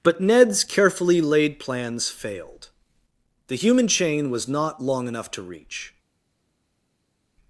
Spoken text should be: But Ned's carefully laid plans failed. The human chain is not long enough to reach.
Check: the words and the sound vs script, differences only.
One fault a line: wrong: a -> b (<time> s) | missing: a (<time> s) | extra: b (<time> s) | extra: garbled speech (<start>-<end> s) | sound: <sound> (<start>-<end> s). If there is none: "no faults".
wrong: is -> was (4.3 s)